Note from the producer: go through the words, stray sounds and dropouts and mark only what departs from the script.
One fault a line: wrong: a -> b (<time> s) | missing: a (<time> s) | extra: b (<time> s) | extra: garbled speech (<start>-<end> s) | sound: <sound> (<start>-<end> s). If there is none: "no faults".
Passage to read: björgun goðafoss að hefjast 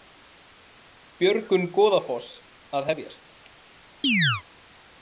sound: chirp (4.0-4.4 s)